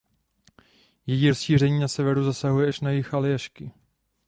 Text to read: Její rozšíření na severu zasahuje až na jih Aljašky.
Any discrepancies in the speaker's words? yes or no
no